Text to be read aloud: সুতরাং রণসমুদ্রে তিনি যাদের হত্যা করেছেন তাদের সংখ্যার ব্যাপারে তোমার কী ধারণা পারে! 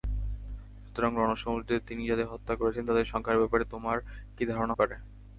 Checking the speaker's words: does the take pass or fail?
pass